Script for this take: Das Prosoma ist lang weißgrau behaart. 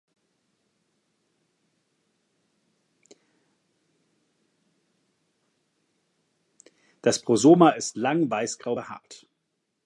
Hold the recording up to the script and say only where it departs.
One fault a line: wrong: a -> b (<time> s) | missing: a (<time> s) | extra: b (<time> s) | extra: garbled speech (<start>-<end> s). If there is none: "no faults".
no faults